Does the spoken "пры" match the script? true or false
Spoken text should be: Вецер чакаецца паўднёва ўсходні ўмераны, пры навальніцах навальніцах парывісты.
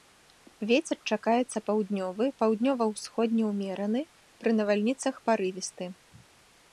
true